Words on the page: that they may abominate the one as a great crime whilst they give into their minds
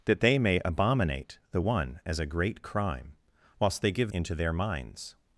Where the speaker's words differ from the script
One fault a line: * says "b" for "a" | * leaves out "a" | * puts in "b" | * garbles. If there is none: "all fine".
all fine